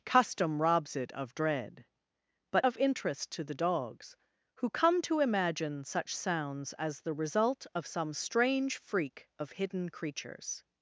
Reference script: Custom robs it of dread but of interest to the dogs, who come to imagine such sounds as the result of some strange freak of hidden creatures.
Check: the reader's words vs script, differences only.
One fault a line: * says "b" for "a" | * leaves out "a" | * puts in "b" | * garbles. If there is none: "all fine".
all fine